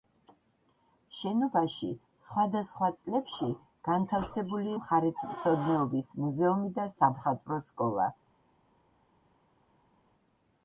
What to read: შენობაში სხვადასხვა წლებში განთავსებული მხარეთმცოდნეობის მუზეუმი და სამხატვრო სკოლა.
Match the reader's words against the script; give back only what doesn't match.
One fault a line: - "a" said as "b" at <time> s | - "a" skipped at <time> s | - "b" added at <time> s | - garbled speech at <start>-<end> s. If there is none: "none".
none